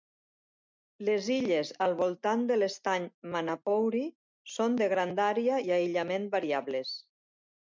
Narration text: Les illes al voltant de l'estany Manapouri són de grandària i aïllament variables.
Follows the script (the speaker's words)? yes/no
yes